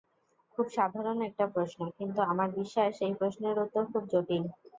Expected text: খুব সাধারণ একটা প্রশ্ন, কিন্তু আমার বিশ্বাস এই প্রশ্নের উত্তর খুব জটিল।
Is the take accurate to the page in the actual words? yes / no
yes